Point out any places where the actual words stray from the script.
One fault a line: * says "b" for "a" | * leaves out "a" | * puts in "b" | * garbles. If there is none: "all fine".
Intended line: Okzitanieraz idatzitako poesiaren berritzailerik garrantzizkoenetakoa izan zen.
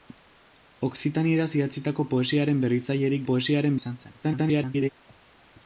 * says "poesiaren" for "garrantzizkoenetakoa"
* garbles